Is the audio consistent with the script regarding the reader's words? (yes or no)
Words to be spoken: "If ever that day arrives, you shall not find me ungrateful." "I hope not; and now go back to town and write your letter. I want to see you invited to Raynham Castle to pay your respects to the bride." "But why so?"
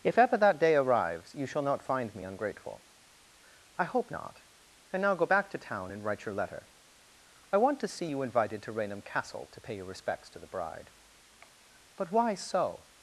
yes